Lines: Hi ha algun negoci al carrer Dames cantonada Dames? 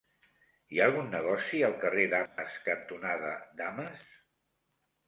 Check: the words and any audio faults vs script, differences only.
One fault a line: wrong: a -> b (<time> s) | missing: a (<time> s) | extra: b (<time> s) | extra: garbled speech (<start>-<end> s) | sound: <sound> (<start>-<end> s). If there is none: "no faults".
sound: dropout (2.3-2.4 s)